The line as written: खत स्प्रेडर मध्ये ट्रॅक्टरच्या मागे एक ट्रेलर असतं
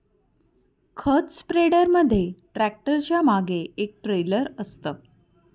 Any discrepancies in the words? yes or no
no